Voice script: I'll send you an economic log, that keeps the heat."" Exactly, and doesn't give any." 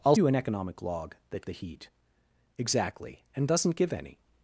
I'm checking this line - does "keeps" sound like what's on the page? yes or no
no